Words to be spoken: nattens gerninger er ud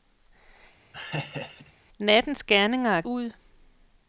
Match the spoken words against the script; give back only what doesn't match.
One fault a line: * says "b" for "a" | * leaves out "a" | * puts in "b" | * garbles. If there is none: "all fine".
all fine